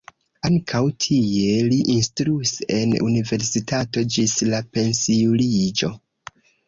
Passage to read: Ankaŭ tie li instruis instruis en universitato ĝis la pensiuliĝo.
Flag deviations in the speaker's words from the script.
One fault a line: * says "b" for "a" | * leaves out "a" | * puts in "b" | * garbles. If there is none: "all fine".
* leaves out "instruis"